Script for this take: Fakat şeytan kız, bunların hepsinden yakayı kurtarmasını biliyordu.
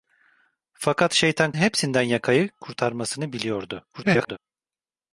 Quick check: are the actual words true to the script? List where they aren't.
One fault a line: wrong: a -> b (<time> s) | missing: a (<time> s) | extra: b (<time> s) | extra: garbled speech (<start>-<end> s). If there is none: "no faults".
missing: kız bunların (1.5 s)
extra: garbled speech (3.9-4.4 s)